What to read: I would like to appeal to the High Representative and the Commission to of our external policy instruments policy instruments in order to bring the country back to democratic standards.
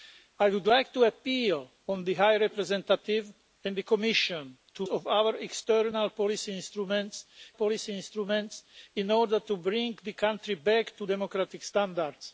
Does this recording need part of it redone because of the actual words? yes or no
no